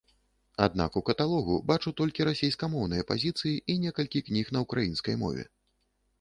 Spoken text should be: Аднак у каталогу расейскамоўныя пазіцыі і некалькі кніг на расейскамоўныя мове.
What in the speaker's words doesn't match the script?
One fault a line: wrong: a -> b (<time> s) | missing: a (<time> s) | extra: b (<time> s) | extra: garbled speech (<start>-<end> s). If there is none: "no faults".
extra: бачу толькі (1.7 s)
wrong: расейскамоўныя -> ўкраінскай (4.7 s)